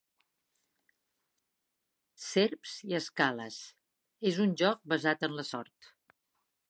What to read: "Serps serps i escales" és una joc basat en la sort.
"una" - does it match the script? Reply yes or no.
no